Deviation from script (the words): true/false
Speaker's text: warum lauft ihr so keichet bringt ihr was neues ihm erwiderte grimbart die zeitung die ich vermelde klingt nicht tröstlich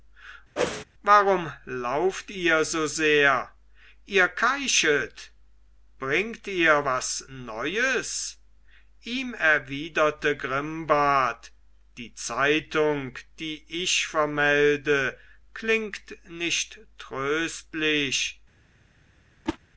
true